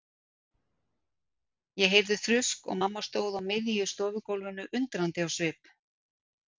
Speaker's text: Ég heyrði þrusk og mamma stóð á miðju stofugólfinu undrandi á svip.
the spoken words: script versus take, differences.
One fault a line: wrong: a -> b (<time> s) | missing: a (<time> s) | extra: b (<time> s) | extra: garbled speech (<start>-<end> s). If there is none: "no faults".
no faults